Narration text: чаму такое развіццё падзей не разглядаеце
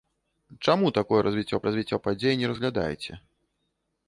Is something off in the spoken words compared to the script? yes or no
yes